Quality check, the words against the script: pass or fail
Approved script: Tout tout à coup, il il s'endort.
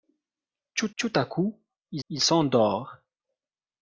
pass